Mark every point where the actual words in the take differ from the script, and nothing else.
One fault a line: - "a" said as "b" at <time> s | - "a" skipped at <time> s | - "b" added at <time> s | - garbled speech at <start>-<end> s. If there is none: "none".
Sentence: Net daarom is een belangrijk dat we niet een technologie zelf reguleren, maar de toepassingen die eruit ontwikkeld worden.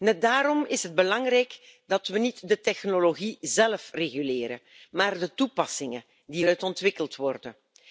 - "een" said as "het" at 0.8 s
- "een" said as "de" at 2.5 s